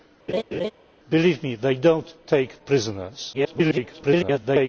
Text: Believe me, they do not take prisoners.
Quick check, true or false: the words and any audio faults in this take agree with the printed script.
false